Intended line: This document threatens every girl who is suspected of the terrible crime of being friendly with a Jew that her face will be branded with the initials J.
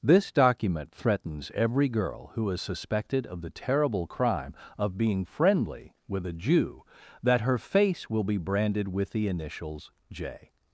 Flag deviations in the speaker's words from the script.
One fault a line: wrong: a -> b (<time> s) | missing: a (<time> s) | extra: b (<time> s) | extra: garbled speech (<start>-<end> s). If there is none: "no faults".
no faults